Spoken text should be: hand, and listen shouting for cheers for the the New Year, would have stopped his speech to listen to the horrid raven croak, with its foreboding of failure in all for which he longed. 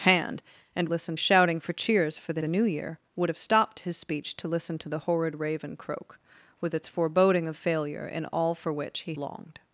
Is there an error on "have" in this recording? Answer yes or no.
no